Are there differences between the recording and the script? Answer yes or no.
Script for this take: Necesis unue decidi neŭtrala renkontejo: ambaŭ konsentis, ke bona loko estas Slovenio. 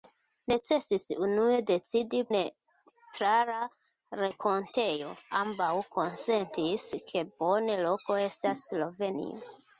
no